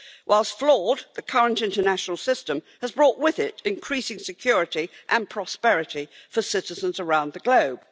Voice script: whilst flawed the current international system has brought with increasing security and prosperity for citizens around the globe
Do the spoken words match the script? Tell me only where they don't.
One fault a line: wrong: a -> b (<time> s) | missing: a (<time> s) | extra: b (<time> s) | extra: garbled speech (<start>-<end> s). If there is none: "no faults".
extra: it (3.4 s)